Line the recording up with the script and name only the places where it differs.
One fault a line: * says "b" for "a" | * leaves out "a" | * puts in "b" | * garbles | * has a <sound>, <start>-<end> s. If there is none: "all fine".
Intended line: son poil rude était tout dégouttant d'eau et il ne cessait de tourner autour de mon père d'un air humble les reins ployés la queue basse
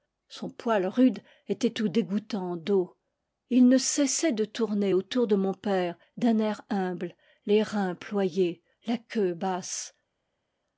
all fine